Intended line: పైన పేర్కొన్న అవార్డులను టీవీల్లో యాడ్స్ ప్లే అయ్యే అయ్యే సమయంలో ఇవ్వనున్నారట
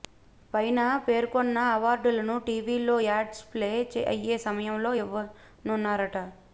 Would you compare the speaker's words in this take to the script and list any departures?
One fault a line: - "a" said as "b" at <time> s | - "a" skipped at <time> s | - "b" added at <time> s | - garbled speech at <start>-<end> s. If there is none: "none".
- "అయ్యే" skipped at 4.4 s